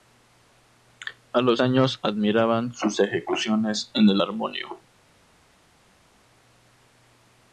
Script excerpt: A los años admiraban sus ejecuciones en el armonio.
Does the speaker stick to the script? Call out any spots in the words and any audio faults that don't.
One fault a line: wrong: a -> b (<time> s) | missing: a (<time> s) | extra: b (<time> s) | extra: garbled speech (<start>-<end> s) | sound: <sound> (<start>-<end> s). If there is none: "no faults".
no faults